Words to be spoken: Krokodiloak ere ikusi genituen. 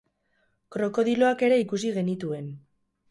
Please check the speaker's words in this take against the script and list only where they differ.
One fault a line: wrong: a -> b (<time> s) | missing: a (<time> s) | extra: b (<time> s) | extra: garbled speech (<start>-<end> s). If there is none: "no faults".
no faults